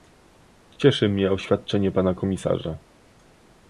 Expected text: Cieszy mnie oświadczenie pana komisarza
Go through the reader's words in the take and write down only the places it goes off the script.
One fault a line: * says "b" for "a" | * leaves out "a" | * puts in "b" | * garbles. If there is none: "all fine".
all fine